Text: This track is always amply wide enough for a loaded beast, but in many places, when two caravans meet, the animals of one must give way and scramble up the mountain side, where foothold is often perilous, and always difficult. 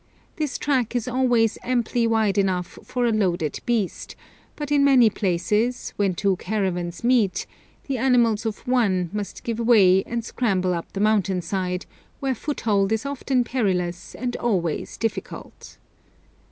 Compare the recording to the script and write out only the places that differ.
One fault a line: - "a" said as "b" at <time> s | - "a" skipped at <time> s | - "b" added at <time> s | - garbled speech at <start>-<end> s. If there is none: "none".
none